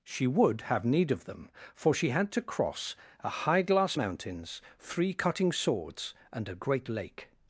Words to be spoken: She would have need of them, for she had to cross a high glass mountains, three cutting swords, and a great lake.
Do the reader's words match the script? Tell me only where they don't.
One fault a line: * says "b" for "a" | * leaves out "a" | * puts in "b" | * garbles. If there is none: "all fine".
all fine